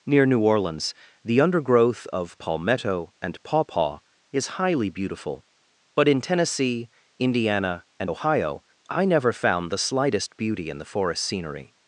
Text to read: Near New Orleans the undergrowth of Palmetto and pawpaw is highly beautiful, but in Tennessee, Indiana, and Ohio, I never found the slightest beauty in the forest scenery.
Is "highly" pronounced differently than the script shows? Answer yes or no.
no